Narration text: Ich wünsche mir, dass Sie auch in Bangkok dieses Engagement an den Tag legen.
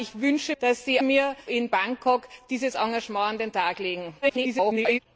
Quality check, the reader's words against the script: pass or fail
fail